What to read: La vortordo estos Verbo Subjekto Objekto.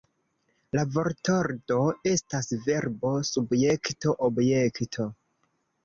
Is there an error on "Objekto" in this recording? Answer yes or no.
no